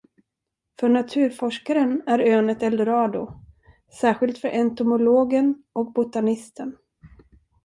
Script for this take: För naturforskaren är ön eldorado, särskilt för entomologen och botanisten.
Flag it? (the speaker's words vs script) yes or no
yes